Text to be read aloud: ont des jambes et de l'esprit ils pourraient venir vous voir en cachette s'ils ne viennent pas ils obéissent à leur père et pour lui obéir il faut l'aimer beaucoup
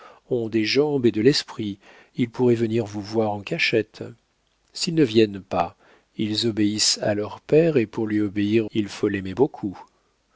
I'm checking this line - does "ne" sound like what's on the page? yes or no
yes